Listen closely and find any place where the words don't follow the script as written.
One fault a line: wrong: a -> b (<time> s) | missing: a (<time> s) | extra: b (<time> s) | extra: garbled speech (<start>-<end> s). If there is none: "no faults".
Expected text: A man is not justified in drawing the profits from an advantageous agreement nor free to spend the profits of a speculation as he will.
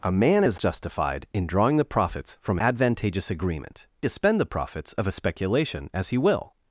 missing: not (0.6 s)
missing: an (2.6 s)
missing: nor free (3.9 s)